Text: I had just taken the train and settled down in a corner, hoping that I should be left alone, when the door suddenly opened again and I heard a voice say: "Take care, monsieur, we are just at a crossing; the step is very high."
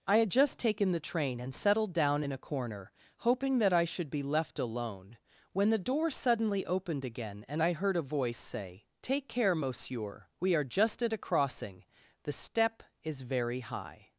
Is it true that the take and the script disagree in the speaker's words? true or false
false